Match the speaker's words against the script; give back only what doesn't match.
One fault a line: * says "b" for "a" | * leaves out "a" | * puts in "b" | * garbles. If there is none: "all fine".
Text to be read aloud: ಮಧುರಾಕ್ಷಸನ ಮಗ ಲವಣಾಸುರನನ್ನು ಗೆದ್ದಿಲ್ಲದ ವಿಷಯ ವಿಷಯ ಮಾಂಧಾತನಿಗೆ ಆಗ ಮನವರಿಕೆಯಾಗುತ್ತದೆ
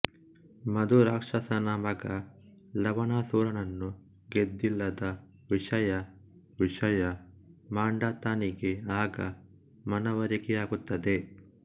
all fine